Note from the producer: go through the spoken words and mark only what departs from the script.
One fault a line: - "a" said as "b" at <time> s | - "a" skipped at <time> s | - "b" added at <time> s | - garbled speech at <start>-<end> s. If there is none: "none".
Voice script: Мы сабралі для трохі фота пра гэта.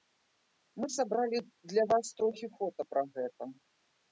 - "вас" added at 1.9 s